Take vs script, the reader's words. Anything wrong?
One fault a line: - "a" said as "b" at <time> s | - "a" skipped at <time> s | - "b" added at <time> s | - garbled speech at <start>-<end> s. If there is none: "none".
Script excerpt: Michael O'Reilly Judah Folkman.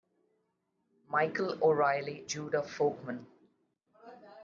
none